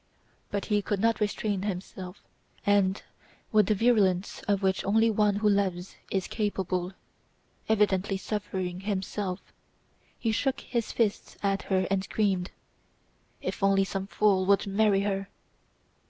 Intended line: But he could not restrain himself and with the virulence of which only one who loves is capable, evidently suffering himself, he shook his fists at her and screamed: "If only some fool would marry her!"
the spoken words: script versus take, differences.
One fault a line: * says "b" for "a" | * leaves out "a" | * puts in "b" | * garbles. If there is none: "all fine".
all fine